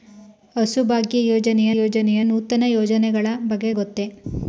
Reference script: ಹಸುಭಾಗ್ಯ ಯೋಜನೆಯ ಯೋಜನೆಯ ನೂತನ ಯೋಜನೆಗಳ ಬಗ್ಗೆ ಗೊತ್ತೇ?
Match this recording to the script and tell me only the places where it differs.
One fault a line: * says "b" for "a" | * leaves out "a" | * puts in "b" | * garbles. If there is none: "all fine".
all fine